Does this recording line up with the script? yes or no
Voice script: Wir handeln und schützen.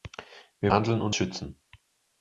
yes